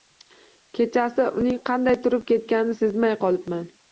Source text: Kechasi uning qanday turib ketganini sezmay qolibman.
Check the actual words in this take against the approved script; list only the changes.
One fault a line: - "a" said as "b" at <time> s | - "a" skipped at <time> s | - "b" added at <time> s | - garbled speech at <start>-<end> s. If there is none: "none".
none